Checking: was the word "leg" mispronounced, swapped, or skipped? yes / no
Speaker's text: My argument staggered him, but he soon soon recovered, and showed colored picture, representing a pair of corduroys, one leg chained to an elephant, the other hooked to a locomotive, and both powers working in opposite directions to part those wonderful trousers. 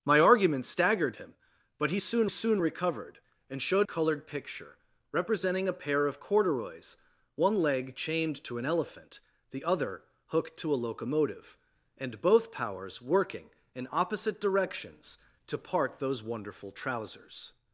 no